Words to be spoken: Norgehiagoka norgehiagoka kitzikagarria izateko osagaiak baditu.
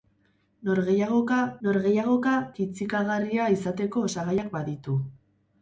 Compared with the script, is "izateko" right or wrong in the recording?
right